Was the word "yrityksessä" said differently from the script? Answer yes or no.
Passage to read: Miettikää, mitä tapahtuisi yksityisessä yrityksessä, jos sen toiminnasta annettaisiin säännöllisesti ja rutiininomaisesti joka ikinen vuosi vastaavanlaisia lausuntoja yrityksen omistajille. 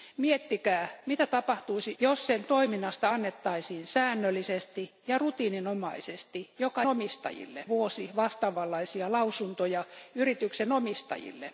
yes